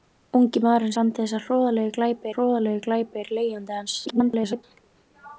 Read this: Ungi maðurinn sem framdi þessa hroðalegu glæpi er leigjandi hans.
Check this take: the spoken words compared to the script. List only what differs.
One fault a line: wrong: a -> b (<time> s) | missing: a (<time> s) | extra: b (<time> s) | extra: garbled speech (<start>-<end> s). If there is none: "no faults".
missing: sem (0.9 s)
extra: hroðalegu glæpi (2.3 s)
extra: garbled speech (4.1-4.6 s)